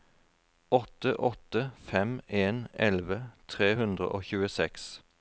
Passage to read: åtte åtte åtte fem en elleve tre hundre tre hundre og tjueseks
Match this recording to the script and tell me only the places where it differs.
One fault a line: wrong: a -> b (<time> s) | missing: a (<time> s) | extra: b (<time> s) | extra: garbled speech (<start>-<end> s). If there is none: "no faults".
missing: åtte (1.7 s)
missing: tre hundre (4.1 s)